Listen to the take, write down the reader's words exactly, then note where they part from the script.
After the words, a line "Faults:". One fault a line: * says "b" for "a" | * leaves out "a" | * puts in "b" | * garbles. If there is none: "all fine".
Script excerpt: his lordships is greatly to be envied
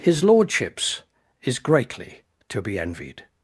his lordships is greatly to be envied
Faults:
all fine